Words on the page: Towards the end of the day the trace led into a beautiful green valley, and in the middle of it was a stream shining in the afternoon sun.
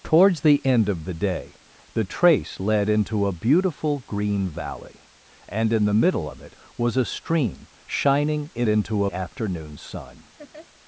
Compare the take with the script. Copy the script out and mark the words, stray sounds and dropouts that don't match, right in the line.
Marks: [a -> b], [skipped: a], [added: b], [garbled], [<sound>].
Towards the end of the day the trace led into a beautiful green valley, and in the middle of it was a stream shining in [the -> into] afternoon sun. [laugh]